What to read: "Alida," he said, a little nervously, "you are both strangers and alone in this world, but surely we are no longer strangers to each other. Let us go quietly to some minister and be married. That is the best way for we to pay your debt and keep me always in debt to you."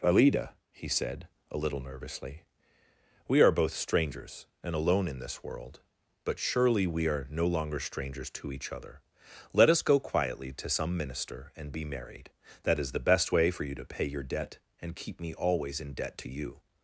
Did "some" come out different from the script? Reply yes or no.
no